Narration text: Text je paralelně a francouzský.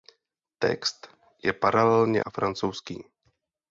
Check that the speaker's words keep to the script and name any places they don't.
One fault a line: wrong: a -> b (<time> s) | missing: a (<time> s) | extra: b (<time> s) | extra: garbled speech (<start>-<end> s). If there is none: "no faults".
no faults